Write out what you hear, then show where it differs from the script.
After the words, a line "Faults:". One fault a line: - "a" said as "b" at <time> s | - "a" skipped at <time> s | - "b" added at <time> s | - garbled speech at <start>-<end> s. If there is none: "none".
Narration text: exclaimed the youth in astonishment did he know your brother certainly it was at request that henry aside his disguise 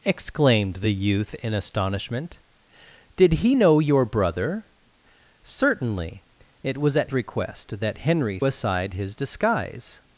exclaimed the youth in astonishment did he know your brother certainly it was at request that henry aside his disguise
Faults:
none